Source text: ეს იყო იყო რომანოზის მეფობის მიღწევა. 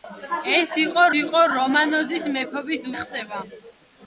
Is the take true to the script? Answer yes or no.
yes